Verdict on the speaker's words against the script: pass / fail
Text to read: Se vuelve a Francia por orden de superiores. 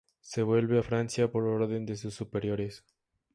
fail